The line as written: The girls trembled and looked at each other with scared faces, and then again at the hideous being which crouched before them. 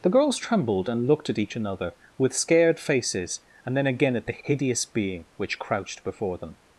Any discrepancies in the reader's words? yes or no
yes